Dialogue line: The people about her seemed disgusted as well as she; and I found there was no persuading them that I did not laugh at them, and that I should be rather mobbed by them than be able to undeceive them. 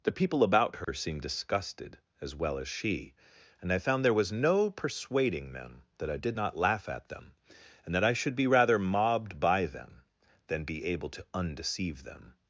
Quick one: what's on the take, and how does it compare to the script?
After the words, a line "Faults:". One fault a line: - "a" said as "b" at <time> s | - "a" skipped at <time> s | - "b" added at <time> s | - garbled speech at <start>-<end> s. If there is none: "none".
The people about her seemed disgusted as well as she; and I found there was no persuading them that I did not laugh at them, and that I should be rather mobbed by them than be able to undeceive them.
Faults:
none